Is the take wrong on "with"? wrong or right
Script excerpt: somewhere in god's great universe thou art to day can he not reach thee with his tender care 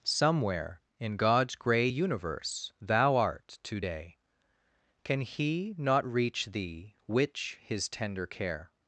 wrong